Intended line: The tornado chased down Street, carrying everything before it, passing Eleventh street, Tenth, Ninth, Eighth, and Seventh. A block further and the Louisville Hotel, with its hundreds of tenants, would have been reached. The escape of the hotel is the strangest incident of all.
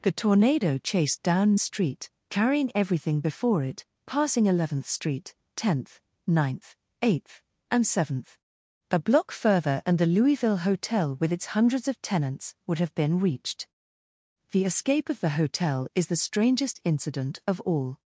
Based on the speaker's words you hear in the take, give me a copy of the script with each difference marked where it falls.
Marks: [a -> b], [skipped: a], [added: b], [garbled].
The tornado chased down Street, carrying everything before it, passing Eleventh street, Tenth, Ninth, Eighth, and Seventh. A block further and the Louisville Hotel, with its hundreds of tenants, would have been reached. The escape of the hotel is the strangest incident of all.